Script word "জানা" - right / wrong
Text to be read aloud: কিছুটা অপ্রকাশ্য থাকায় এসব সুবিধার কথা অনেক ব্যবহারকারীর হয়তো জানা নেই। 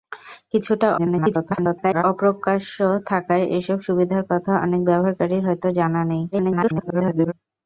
right